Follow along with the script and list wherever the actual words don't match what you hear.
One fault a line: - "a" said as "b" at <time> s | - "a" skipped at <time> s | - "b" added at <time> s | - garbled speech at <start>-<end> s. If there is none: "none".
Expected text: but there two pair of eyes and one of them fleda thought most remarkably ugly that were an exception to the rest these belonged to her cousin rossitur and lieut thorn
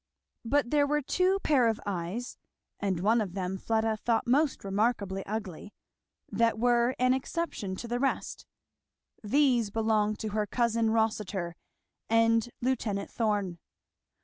- "were" added at 0.9 s